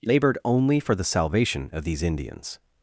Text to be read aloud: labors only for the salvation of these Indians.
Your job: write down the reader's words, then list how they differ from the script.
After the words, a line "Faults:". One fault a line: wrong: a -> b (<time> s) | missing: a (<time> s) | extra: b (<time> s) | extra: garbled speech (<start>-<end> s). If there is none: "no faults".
labored only for the salvation of these Indians.
Faults:
wrong: labors -> labored (0.0 s)